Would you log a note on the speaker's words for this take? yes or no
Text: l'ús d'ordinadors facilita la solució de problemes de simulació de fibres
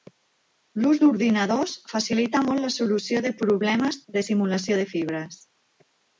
yes